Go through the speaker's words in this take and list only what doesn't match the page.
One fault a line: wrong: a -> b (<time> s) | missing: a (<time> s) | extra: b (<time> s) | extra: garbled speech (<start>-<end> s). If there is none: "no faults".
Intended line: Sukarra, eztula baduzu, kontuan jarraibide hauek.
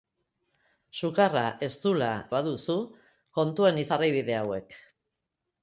no faults